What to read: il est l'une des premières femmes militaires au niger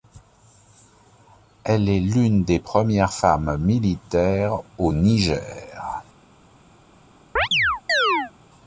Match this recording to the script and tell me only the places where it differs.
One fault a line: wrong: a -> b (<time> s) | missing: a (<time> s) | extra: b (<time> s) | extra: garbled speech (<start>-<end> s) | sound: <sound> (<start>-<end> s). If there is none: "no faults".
wrong: il -> elle (1.6 s)
sound: chirp (7.4-8.3 s)